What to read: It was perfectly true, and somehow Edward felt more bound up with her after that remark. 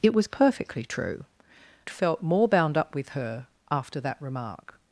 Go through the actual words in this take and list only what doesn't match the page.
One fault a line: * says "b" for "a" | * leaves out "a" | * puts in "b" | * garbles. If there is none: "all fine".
* leaves out "and somehow Edward"